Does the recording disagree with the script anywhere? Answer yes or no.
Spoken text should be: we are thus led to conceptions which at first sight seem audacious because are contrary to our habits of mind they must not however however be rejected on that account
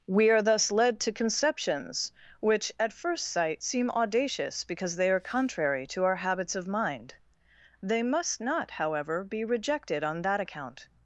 yes